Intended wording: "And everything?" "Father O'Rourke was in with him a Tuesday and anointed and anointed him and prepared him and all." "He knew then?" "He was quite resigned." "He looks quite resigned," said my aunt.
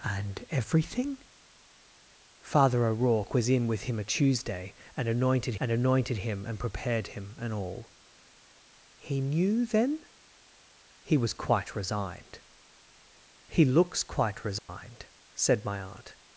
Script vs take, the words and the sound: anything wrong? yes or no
yes